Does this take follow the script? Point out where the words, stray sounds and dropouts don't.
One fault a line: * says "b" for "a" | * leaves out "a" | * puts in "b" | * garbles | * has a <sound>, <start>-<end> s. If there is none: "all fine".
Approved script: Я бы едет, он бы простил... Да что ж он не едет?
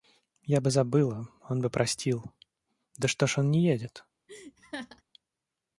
* says "забыла" for "едет"
* has a laugh, 4.3-5.0 s